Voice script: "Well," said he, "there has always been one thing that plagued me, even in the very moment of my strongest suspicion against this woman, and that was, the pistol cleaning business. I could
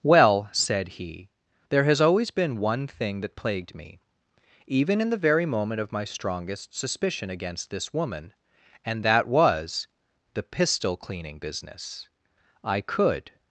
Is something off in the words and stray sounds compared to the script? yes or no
no